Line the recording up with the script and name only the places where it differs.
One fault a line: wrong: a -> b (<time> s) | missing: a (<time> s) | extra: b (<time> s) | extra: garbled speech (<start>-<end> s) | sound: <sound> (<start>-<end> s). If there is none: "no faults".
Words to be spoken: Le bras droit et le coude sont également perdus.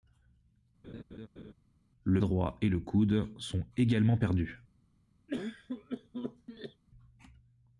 sound: laugh (0.8-1.5 s)
missing: bras (2.2 s)
sound: cough (5.3-6.8 s)